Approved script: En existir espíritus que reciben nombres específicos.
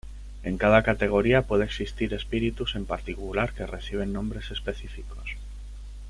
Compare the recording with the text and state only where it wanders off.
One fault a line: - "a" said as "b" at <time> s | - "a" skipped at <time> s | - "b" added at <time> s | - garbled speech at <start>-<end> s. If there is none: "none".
- "cada categoría puede" added at 0.6 s
- "en particular" added at 2.8 s